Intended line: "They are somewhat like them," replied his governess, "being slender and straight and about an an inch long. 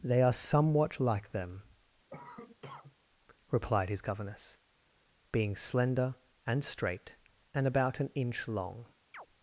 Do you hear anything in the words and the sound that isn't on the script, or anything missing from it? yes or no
yes